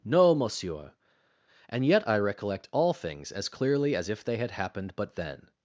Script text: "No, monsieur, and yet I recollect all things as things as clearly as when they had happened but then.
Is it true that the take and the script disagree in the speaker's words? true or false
true